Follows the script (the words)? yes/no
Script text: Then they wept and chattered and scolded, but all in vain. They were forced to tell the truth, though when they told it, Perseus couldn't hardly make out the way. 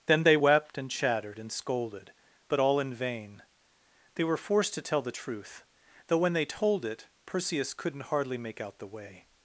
yes